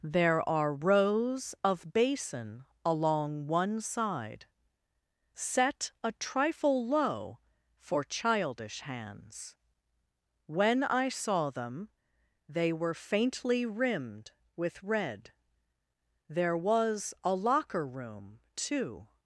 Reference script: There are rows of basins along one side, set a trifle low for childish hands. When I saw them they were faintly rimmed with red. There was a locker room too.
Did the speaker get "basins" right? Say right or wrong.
wrong